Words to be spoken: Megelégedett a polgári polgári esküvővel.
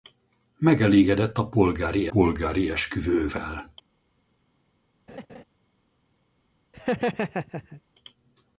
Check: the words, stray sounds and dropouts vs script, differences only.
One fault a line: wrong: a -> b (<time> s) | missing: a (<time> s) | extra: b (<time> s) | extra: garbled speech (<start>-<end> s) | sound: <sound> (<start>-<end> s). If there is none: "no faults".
sound: laugh (5.1-5.4 s)
sound: laugh (6.7-7.8 s)